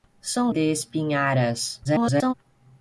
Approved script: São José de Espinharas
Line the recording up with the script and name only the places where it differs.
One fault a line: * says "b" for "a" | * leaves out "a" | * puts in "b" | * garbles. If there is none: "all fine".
* leaves out "José"
* garbles